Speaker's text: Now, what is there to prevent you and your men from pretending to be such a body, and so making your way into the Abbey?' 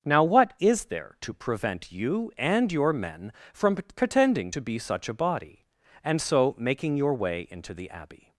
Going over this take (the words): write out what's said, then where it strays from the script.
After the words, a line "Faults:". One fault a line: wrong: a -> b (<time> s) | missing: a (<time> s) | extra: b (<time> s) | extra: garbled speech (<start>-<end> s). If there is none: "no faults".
Now, what is there to prevent you and your men from pretending to be such a body, and so making your way into the Abbey?'
Faults:
no faults